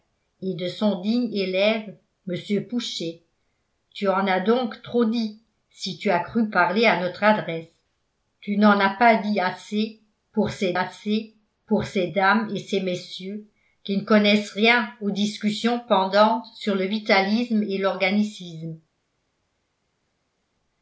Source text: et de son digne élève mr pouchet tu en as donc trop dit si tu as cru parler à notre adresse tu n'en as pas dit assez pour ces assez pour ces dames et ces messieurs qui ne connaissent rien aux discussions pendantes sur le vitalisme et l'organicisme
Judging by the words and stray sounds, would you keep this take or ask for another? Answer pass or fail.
pass